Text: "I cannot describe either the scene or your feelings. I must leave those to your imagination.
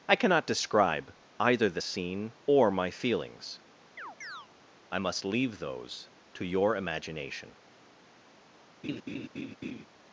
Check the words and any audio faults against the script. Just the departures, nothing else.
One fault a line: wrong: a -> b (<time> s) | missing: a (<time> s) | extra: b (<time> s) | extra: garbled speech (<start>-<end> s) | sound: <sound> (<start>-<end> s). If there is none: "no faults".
wrong: your -> my (2.7 s)
sound: chirp (4.0-4.5 s)
sound: laugh (8.8-9.9 s)